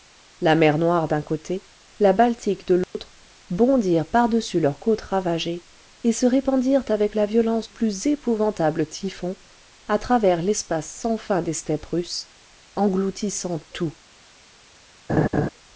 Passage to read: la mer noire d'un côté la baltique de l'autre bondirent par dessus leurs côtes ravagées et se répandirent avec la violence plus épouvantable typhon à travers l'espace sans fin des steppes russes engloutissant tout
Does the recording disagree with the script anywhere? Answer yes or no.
no